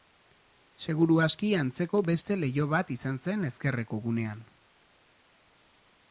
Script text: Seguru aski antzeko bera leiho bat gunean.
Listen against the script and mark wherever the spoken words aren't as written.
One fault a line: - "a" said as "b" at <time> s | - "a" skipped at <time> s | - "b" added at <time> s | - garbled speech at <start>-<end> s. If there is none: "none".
- "bera" said as "beste" at 2.1 s
- "izan zen ezkerreko" added at 3.0 s